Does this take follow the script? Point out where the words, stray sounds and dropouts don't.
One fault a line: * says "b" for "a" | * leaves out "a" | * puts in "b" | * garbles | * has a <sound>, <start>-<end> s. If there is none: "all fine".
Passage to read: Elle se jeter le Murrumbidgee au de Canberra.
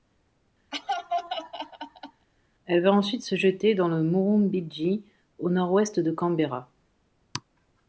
* has a laugh, 0.7-2.3 s
* puts in "va ensuite"
* puts in "dans"
* puts in "nord ouest"